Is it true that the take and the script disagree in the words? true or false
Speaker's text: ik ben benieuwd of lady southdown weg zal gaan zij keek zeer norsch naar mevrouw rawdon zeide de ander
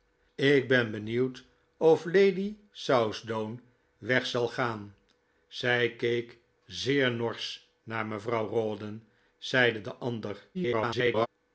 true